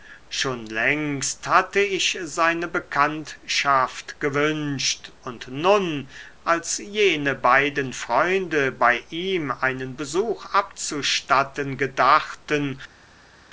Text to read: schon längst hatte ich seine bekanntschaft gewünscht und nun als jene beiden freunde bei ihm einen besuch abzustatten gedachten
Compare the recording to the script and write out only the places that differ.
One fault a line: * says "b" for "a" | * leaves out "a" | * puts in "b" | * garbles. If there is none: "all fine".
all fine